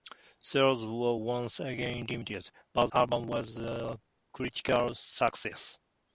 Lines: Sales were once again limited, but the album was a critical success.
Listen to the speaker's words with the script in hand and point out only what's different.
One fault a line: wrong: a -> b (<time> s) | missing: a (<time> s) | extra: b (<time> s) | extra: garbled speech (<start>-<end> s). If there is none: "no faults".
missing: the (2.9 s)